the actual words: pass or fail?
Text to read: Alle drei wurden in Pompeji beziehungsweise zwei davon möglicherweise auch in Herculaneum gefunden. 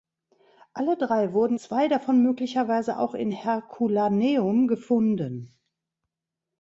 fail